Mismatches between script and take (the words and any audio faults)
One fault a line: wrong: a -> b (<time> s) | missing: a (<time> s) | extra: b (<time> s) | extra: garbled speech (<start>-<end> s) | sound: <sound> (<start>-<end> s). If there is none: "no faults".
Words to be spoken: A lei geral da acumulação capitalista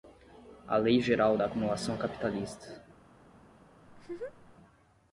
sound: laugh (3.9-4.6 s)